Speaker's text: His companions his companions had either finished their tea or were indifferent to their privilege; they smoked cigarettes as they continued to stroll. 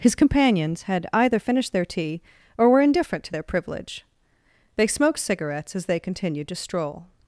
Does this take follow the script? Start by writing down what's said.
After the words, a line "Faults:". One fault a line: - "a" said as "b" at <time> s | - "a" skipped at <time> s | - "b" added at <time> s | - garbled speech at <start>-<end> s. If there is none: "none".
His companions had either finished their tea or were indifferent to their privilege; they smoked cigarettes as they continued to stroll.
Faults:
- "his companions" skipped at 0.8 s